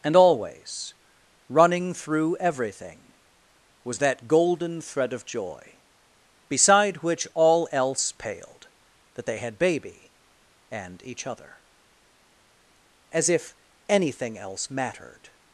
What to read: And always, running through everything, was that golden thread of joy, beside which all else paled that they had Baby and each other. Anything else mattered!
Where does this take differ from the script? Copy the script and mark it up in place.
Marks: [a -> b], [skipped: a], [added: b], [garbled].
And always, running through everything, was that golden thread of joy, beside which all else paled that they had Baby and each other. [added: As if] Anything else mattered!